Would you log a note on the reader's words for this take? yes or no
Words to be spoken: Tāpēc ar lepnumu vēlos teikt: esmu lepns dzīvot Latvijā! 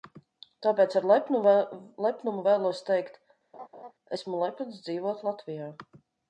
no